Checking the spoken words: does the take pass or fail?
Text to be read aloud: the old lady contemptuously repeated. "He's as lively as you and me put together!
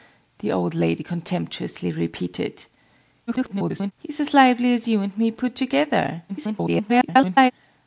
fail